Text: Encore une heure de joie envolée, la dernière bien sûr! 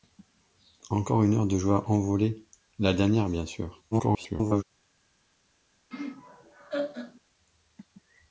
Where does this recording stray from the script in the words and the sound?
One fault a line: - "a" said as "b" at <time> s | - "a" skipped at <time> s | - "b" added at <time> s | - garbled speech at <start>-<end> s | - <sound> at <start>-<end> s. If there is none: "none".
- garbled speech at 3.9-4.6 s
- laugh at 5.9-7.2 s